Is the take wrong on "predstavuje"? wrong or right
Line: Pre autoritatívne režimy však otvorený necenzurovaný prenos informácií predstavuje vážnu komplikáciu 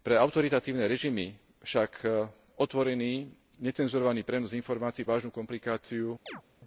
wrong